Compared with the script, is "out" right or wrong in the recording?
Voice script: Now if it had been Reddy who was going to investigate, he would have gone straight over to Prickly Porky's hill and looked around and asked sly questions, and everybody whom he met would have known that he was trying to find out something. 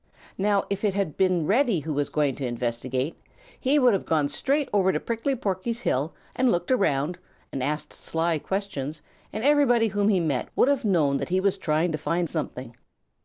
wrong